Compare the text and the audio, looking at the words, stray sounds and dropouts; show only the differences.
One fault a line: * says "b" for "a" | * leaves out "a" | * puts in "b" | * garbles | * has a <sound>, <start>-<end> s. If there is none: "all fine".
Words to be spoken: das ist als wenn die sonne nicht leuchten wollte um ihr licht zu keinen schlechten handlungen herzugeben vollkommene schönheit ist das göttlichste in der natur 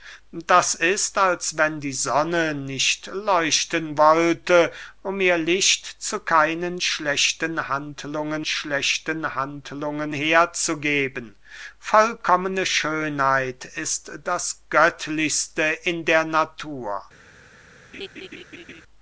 * puts in "schlechten handlungen"
* has a laugh, 17.9-18.8 s